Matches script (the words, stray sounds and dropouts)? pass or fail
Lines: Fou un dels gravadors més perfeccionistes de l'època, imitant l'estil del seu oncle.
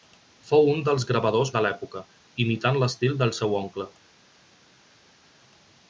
fail